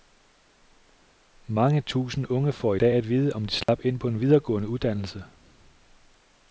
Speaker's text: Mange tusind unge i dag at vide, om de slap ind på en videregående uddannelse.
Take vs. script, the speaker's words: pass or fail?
fail